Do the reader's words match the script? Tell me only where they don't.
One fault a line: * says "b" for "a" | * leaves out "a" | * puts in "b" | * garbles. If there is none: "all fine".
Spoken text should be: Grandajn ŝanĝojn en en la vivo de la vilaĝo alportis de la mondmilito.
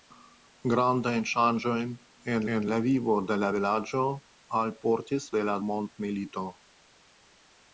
all fine